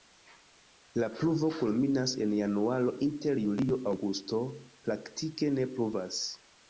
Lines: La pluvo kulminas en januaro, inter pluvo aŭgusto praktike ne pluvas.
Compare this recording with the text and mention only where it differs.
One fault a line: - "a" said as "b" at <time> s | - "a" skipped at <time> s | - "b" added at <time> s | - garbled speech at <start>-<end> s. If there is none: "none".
- "pluvo" said as "julio" at 3.4 s